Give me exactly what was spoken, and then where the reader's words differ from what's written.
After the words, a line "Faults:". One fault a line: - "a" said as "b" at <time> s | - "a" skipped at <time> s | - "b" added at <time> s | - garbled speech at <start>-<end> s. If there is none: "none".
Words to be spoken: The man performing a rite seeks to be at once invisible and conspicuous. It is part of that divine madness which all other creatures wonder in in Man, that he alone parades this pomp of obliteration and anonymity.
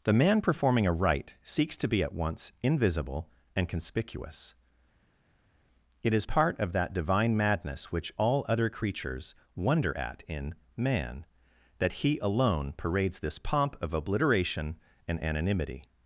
The man performing a rite seeks to be at once invisible and conspicuous. It is part of that divine madness which all other creatures wonder at in Man, that he alone parades this pomp of obliteration and anonymity.
Faults:
- "in" said as "at" at 10.0 s